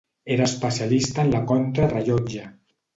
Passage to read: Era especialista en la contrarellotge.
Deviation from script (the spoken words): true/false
false